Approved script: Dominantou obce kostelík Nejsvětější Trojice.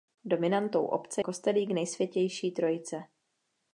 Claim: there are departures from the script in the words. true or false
false